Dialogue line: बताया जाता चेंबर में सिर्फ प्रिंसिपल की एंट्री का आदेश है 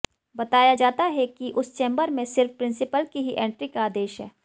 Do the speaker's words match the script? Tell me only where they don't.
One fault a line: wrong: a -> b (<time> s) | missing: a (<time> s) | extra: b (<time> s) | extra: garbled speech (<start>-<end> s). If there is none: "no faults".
extra: है कि उस (1.1 s)
extra: ही (3.2 s)